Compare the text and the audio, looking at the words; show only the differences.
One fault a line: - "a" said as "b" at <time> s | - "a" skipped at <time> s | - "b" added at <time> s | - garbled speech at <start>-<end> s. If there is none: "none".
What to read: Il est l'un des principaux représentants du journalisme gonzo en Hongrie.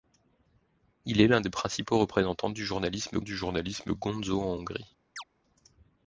- "du journalisme" added at 3.2 s